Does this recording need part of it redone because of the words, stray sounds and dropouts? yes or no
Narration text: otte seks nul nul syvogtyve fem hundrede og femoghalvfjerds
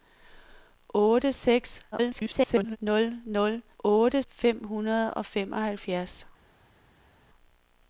yes